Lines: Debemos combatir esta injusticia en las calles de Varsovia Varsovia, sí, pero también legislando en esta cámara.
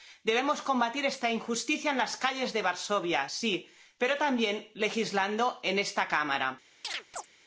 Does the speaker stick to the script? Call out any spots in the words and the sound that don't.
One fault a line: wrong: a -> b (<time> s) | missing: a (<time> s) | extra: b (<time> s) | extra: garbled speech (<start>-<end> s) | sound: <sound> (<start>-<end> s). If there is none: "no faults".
missing: Varsovia (3.3 s)
sound: chirp (6.8-7.3 s)